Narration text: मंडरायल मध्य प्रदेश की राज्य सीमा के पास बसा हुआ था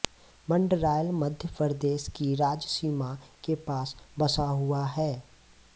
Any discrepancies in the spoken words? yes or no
yes